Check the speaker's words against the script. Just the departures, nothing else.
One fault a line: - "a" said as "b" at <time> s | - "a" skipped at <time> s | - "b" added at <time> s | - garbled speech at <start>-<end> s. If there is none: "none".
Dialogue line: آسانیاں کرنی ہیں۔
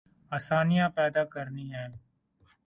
- "پیدا" added at 1.0 s